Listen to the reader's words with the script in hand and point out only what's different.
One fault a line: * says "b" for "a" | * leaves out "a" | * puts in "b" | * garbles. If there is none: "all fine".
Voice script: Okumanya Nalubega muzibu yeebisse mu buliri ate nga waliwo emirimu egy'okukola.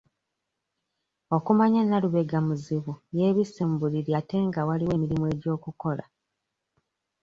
all fine